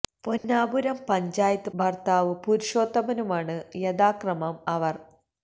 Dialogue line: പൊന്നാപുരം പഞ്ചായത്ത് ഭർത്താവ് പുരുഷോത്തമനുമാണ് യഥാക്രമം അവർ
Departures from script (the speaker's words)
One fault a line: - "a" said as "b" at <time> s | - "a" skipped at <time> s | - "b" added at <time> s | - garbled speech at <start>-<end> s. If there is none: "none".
none